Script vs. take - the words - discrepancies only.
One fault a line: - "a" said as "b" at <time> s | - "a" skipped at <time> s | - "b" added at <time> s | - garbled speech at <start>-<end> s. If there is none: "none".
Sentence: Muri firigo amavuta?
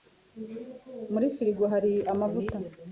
- "hari" added at 1.7 s